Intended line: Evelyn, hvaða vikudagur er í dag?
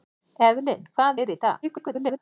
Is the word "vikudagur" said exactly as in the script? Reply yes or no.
no